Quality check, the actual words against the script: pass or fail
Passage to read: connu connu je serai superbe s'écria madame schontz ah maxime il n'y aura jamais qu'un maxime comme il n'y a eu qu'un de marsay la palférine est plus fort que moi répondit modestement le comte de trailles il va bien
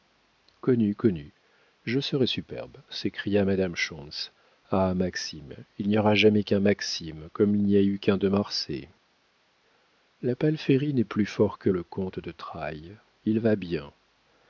fail